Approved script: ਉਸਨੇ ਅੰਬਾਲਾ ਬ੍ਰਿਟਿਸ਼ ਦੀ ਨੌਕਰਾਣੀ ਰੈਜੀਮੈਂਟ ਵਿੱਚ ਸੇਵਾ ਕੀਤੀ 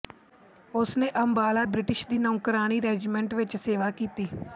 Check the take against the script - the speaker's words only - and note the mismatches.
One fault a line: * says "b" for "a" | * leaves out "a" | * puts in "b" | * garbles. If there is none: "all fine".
all fine